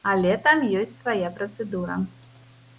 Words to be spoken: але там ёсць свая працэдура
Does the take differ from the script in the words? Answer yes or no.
no